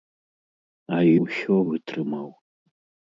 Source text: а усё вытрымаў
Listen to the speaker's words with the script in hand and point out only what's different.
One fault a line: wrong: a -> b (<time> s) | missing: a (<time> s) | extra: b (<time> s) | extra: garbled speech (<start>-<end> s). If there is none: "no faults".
no faults